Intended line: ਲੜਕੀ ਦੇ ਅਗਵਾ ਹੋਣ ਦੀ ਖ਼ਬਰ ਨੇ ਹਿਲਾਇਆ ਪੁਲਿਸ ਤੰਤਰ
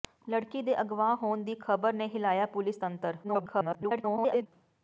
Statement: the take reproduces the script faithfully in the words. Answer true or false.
false